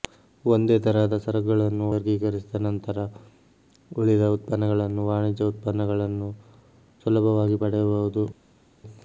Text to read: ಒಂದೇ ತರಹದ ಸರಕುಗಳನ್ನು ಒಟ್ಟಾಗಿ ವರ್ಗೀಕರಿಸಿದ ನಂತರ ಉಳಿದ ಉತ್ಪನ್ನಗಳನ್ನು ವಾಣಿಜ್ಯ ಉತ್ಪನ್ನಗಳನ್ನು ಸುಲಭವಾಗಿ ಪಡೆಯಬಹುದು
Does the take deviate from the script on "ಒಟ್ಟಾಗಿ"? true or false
true